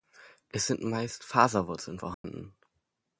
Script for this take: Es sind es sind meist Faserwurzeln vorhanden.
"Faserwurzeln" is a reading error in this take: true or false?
false